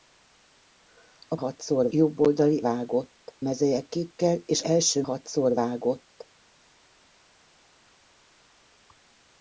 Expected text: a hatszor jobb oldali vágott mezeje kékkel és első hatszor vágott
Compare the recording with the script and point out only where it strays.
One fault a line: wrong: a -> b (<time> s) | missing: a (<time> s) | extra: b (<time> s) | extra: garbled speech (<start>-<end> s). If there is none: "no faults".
no faults